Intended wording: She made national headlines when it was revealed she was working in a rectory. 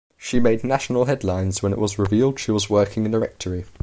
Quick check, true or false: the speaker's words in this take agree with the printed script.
true